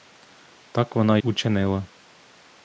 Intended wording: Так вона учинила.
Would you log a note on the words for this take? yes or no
no